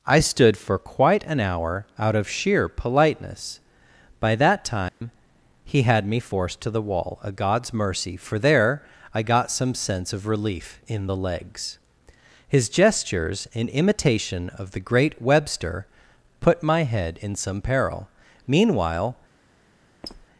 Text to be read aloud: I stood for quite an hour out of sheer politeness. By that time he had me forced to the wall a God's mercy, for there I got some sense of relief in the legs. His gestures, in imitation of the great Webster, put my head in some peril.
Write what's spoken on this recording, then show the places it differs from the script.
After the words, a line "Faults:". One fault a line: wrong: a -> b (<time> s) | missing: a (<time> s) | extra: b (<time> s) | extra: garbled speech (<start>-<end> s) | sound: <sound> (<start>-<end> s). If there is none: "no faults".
I stood for quite an hour out of sheer politeness. By that time he had me forced to the wall a God's mercy, for there I got some sense of relief in the legs. His gestures, in imitation of the great Webster, put my head in some peril. Meanwhile
Faults:
sound: dropout (4.9-5.0 s)
extra: Meanwhile (18.5 s)
sound: squeak (20.0-20.3 s)